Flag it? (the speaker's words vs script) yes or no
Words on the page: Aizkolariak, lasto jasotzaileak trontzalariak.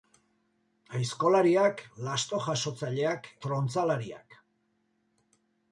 no